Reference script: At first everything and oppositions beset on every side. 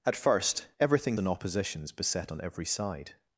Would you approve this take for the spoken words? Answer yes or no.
yes